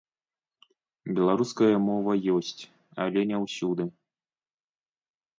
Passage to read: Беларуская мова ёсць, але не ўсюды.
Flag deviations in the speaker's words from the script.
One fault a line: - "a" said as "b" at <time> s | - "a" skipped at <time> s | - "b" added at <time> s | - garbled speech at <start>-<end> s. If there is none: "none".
none